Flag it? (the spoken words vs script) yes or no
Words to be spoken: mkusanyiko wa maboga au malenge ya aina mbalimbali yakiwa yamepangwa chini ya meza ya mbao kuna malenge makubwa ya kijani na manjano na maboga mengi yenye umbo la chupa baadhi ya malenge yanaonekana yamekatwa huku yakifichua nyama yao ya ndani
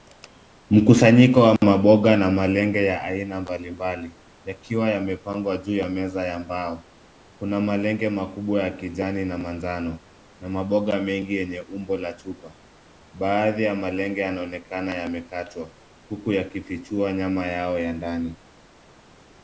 yes